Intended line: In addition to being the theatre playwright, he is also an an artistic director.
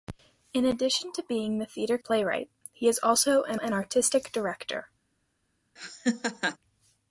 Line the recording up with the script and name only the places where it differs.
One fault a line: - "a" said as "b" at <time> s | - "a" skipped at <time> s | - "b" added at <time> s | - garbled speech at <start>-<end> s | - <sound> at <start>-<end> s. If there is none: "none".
- laugh at 5.8-6.6 s